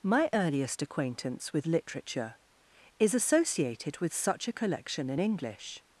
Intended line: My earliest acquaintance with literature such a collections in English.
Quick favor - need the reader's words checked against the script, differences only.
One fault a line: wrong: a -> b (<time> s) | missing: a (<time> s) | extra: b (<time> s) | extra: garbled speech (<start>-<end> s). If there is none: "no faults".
extra: is associated with (3.0 s)
wrong: collections -> collection (4.5 s)